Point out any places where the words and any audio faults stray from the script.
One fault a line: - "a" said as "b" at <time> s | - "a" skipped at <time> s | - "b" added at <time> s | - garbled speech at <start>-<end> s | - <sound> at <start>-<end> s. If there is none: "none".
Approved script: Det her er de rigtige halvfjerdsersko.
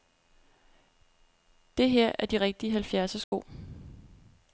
- dropout at 3.2-3.3 s